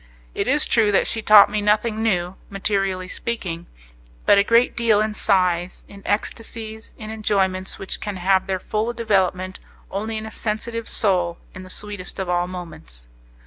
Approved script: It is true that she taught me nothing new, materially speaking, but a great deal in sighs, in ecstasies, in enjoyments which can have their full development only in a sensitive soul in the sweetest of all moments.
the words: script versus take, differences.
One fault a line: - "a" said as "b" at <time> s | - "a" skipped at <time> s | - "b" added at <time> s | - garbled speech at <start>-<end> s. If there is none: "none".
none